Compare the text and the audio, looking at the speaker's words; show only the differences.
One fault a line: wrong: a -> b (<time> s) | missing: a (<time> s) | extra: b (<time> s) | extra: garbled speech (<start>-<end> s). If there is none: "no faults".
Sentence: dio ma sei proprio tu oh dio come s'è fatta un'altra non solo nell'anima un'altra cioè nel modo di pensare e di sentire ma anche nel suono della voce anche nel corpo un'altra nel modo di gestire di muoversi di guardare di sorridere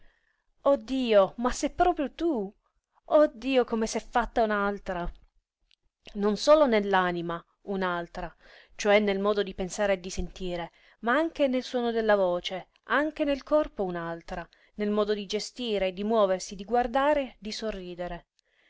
no faults